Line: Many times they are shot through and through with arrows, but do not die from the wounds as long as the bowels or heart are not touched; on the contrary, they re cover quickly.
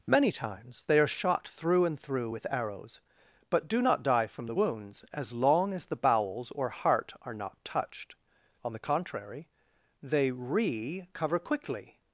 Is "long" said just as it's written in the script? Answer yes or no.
yes